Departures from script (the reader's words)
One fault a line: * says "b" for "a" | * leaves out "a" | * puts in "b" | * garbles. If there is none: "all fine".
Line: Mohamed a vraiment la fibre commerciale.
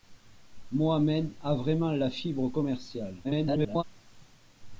* garbles